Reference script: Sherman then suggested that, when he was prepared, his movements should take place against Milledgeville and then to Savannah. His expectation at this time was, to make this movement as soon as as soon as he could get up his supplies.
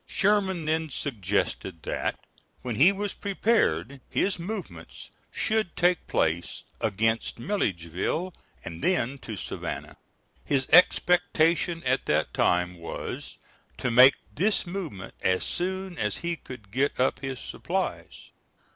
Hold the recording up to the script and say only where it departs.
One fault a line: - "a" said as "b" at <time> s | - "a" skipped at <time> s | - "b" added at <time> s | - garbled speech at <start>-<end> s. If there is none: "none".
- "this" said as "that" at 12.0 s
- "as soon as" skipped at 16.2 s